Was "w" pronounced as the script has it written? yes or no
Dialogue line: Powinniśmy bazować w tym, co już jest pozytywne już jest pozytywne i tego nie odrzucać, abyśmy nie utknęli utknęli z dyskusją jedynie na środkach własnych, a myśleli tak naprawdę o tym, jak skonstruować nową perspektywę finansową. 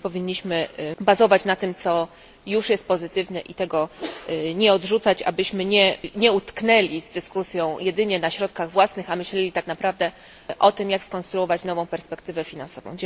no